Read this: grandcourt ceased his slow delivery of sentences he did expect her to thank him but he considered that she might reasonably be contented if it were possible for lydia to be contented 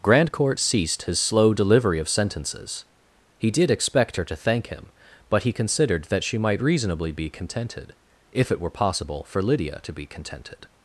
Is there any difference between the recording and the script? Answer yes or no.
no